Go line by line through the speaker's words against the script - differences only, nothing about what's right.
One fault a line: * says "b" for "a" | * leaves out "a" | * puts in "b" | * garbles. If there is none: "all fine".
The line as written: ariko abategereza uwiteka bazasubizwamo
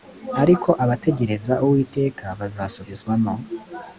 all fine